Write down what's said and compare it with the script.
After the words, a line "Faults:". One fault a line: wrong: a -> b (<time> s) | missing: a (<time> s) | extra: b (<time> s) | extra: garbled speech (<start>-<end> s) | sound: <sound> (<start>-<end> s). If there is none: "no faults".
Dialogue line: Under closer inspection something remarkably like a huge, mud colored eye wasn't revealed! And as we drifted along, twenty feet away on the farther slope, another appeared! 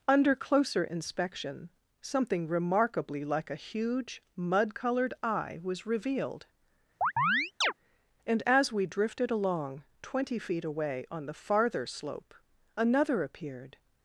Under closer inspection something remarkably like a huge, mud colored eye was revealed! And as we drifted along, twenty feet away on the farther slope, another appeared!
Faults:
wrong: wasn't -> was (5.6 s)
sound: chirp (7.0-7.7 s)